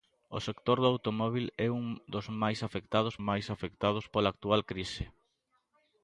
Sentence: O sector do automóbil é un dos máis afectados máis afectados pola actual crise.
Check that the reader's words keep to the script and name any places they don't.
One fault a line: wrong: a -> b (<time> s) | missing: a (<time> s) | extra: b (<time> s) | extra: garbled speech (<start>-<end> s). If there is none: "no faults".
no faults